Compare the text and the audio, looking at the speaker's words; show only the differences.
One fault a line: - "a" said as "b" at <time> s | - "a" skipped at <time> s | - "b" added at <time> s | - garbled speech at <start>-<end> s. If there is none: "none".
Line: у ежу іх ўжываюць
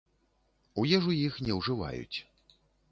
- "не" added at 1.5 s